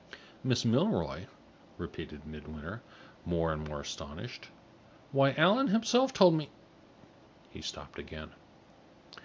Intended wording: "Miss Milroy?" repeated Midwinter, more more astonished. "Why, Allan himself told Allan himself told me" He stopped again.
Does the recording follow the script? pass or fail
fail